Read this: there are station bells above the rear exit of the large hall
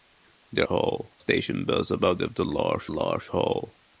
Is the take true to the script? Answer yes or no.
no